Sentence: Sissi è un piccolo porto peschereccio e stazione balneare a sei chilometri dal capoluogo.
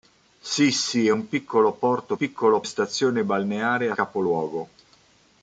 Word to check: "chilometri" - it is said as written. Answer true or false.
false